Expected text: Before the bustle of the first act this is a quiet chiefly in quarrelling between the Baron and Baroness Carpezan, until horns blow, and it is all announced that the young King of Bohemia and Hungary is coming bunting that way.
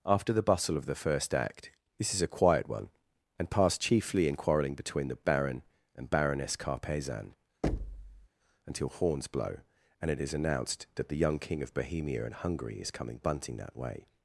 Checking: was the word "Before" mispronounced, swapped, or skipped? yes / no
yes